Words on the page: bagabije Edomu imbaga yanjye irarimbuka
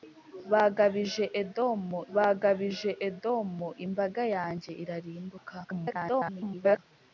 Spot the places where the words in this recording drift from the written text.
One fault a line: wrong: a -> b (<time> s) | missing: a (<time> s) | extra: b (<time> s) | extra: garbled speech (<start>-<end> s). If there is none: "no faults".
extra: bagabije Edomu (2.1 s)
extra: garbled speech (5.6-6.8 s)